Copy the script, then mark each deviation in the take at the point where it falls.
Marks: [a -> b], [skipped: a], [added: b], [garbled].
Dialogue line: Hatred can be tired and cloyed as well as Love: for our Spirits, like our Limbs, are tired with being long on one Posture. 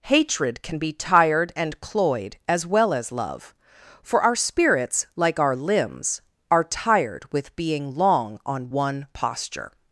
Hatred can be tired and cloyed as well as Love: for our Spirits, like our Limbs, are tired with being long on one Posture.